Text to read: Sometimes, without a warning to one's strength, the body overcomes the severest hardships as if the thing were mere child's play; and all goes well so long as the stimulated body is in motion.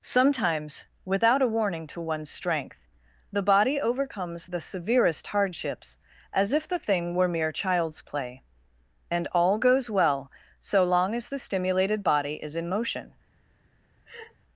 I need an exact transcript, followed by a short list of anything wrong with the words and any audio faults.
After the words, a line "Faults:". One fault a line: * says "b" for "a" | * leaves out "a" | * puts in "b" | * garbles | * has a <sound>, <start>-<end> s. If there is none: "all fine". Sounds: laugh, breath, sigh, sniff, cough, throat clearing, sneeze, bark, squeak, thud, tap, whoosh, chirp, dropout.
Sometimes, without a warning to one's strength, the body overcomes the severest hardships as if the thing were mere child's play; and all goes well so long as the stimulated body is in motion.
Faults:
* has a laugh, 14.1-14.4 s